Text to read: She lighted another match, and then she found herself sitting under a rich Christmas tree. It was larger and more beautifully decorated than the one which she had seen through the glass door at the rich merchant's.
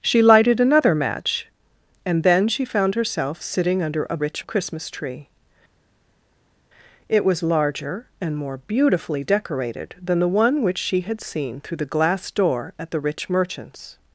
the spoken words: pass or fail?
pass